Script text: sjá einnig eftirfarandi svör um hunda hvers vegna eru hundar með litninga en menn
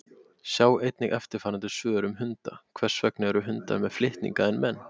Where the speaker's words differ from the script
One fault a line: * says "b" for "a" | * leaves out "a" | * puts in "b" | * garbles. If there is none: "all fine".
all fine